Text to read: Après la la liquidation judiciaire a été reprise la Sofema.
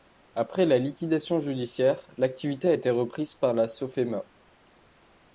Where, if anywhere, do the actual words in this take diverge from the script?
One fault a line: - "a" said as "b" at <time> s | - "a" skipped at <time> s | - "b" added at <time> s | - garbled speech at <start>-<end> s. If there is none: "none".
- "la" skipped at 0.8 s
- "l'activité" added at 2.2 s
- "par" added at 3.3 s